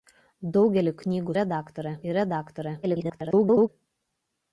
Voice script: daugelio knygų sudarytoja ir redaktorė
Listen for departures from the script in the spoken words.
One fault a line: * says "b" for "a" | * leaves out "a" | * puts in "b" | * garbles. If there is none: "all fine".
* says "redaktorė" for "sudarytoja"
* garbles